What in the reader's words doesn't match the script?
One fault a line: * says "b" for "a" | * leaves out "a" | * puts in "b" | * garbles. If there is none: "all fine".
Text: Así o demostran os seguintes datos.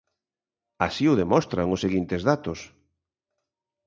all fine